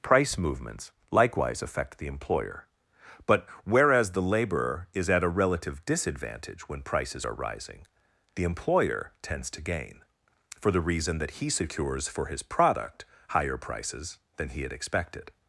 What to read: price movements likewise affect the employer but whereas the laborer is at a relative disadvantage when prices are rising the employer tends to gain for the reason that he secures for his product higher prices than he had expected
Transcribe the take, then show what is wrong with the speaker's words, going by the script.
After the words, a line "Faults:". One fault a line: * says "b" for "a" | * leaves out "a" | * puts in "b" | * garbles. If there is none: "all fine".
price movements likewise affect the employer but whereas the laborer is at a relative disadvantage when prices are rising the employer tends to gain for the reason that he secures for his product higher prices than he had expected
Faults:
all fine